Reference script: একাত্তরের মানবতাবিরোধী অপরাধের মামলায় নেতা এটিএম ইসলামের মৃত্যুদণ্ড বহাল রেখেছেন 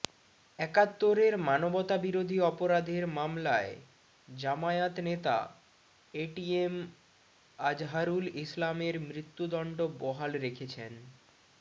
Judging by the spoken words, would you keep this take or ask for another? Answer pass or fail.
fail